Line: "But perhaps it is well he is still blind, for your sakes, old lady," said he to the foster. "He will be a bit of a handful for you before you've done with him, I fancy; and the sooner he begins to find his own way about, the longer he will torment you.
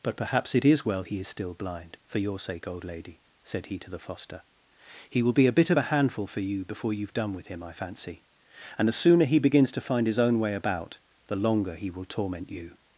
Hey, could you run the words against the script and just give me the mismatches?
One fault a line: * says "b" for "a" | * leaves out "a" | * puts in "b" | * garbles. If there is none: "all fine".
* says "sake" for "sakes"